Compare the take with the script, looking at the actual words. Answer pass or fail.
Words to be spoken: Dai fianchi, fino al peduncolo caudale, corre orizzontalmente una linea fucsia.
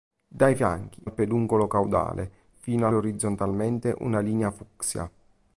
fail